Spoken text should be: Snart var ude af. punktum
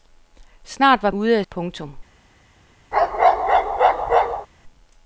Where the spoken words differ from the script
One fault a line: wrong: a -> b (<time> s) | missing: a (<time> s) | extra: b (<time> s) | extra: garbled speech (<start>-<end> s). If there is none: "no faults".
no faults